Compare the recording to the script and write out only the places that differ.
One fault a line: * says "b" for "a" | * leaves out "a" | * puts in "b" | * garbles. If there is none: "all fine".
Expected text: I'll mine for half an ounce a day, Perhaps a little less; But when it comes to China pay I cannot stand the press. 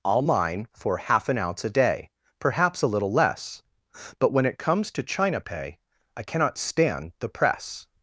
all fine